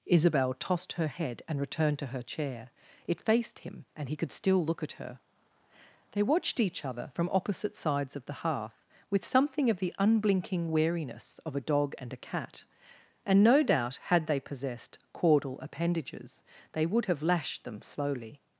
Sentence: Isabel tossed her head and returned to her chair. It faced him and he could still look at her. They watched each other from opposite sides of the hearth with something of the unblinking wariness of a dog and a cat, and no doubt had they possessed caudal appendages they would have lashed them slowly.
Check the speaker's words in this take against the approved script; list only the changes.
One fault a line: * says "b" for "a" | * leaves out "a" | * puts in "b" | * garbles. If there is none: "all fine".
all fine